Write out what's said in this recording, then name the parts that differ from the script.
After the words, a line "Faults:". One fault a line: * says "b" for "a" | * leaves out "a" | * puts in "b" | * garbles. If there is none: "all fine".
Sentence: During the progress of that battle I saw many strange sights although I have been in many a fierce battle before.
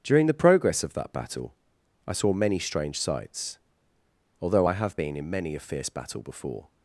During the progress of that battle I saw many strange sights although I have been in many a fierce battle before.
Faults:
all fine